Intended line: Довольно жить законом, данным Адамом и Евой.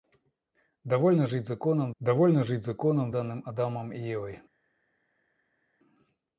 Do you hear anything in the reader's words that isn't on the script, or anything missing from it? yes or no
yes